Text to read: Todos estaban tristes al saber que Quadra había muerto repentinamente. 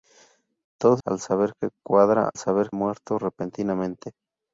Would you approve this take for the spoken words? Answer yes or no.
no